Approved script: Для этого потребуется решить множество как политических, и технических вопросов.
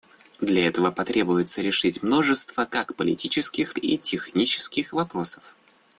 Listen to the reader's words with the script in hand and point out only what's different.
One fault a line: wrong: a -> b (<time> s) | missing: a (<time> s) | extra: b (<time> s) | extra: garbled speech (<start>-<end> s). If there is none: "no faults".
no faults